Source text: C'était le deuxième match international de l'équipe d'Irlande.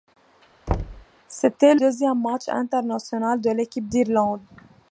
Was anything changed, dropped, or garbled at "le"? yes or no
yes